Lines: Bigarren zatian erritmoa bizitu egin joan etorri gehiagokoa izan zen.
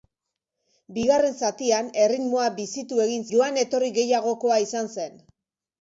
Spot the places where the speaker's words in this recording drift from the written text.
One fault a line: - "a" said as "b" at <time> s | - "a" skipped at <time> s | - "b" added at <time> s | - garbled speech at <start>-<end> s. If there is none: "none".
none